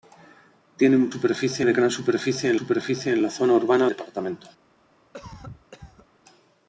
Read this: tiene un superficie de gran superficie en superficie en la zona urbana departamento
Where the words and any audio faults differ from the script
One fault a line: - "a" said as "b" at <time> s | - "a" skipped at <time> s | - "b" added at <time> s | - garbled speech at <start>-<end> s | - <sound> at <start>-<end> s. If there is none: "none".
- cough at 5.1-6.1 s